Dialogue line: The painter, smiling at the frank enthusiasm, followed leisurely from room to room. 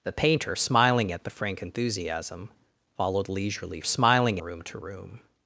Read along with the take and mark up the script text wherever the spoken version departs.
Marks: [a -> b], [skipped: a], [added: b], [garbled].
The painter, smiling at the frank enthusiasm, followed leisurely [from -> smiling] room to room.